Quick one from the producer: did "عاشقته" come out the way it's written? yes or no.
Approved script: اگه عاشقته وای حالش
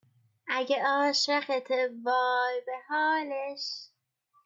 yes